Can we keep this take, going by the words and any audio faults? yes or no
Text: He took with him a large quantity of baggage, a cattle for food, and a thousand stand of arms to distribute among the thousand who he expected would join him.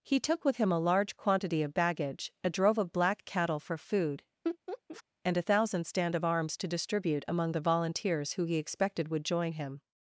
no